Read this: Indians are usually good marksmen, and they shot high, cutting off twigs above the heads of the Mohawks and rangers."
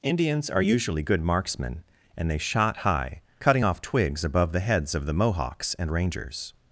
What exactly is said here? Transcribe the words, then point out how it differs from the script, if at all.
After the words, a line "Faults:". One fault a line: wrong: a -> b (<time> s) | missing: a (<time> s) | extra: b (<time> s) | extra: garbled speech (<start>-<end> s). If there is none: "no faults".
Indians are usually good marksmen, and they shot high, cutting off twigs above the heads of the Mohawks and rangers."
Faults:
no faults